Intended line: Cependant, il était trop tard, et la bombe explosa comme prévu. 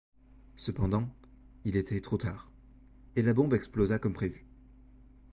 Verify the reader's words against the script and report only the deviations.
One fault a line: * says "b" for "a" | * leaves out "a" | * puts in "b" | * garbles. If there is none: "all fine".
all fine